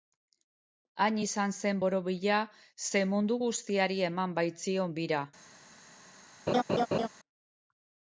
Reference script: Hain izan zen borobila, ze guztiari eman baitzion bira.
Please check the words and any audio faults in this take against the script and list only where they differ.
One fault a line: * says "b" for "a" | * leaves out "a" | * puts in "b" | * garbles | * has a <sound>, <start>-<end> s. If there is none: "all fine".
* puts in "mundu"
* has a laugh, 6.5-7.1 s